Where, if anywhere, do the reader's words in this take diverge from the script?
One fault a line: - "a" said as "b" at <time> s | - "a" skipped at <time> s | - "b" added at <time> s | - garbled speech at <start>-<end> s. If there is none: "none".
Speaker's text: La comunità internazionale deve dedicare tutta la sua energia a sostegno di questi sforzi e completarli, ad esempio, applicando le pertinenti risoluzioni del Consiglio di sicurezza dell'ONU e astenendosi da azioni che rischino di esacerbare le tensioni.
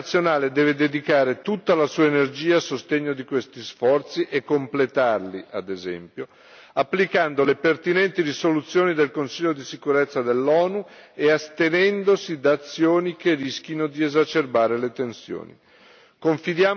none